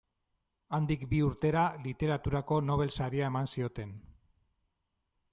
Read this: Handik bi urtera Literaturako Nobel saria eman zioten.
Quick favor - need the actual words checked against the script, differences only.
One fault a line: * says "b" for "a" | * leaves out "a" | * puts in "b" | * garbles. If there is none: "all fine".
all fine